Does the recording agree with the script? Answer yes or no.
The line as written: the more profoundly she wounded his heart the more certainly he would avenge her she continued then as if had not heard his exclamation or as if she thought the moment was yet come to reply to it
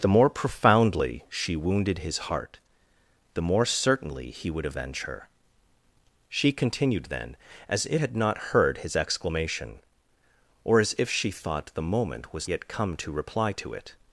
yes